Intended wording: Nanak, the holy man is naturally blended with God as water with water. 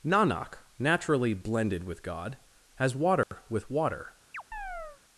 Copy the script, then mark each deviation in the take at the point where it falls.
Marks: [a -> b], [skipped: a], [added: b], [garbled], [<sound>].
Nanak, [skipped: the holy man is] naturally blended with God as water [dropout] with water. [chirp]